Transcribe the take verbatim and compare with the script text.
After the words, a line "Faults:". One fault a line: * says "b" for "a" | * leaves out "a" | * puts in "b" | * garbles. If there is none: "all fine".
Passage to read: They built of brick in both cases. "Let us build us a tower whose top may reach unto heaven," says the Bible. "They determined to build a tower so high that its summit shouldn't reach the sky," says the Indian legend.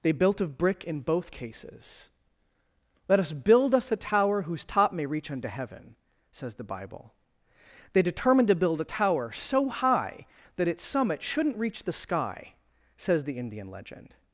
They built of brick in both cases. "Let us build us a tower whose top may reach unto heaven," says the Bible. "They determined to build a tower so high that its summit shouldn't reach the sky," says the Indian legend.
Faults:
all fine